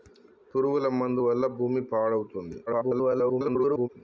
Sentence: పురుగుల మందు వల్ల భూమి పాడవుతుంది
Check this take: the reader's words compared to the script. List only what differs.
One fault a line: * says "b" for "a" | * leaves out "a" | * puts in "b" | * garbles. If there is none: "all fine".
* garbles